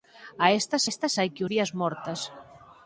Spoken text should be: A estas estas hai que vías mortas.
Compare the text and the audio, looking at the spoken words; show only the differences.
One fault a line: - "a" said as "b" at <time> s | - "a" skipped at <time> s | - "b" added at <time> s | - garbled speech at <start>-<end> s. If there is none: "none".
none